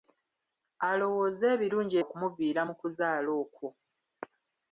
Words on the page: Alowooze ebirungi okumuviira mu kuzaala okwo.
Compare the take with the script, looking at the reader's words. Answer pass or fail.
pass